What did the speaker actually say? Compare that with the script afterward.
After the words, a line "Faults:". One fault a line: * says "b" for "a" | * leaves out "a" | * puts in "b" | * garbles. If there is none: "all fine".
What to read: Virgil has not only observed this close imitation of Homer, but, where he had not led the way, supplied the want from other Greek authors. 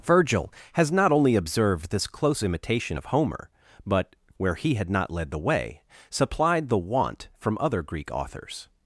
Virgil has not only observed this close imitation of Homer, but, where he had not led the way, supplied the want from other Greek authors.
Faults:
all fine